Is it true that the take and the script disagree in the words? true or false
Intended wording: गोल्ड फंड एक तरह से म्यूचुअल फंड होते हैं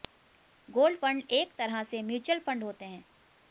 false